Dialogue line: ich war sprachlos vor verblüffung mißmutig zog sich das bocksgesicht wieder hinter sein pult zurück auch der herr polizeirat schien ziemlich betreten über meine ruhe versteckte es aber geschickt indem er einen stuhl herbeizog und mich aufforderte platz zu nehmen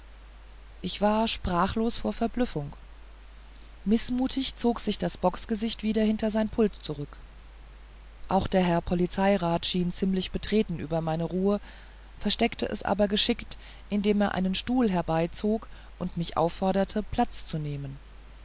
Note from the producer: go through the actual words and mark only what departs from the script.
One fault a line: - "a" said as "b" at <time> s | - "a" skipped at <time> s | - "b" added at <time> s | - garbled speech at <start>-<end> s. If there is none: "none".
none